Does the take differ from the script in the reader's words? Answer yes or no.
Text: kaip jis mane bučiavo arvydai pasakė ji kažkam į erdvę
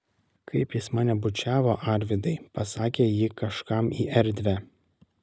no